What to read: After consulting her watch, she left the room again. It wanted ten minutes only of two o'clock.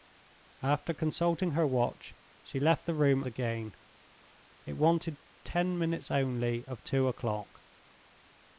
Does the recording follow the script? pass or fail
pass